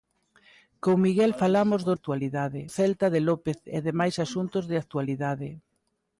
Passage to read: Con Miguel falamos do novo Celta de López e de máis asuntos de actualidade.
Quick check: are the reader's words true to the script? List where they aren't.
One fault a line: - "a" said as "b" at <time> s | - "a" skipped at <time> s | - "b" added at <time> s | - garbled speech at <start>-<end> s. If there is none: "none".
- "novo" said as "actualidade" at 2.0 s